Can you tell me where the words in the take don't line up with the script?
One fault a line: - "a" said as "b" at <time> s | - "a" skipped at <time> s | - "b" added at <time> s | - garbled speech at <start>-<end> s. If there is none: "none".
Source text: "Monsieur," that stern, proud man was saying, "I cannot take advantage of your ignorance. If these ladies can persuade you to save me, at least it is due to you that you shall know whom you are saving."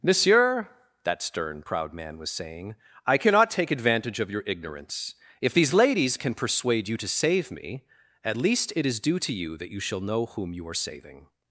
none